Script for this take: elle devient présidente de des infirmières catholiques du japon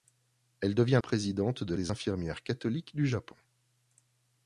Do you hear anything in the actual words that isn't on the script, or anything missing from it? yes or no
no